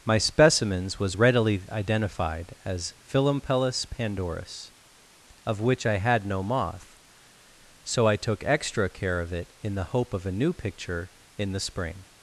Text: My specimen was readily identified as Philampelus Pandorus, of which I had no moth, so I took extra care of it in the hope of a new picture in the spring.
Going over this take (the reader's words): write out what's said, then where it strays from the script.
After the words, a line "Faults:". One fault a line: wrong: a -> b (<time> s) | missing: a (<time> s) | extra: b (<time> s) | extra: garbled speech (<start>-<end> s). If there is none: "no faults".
My specimens was readily identified as Philampelus Pandorus, of which I had no moth, so I took extra care of it in the hope of a new picture in the spring.
Faults:
wrong: specimen -> specimens (0.2 s)